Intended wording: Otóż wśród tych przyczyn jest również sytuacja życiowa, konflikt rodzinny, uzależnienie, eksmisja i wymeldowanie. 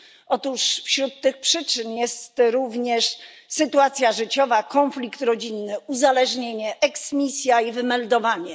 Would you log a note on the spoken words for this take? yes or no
no